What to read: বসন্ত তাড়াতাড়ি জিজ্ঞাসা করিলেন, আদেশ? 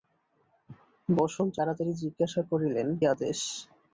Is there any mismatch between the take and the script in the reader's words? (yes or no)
no